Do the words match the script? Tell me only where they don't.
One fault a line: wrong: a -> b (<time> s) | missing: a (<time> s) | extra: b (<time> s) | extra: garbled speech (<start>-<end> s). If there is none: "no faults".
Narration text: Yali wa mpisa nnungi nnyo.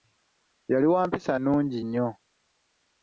no faults